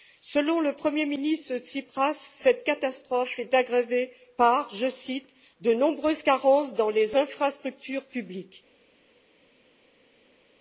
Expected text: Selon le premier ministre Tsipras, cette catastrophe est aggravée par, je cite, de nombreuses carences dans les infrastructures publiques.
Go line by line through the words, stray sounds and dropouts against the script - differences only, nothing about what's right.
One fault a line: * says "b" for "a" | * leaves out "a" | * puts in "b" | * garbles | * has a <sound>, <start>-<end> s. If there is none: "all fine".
all fine